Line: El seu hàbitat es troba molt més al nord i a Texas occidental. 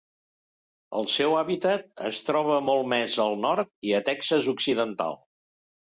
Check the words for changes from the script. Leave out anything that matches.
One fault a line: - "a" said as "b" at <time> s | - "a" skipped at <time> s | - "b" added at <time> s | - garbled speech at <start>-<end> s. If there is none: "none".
none